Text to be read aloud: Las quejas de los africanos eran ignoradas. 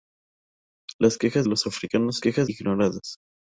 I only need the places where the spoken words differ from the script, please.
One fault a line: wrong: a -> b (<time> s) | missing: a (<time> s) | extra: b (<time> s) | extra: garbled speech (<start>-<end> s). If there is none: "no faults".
missing: de (1.4 s)
wrong: eran -> quejas (2.2 s)